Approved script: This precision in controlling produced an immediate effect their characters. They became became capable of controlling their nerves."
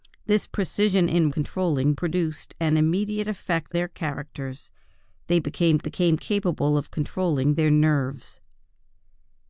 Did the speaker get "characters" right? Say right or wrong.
right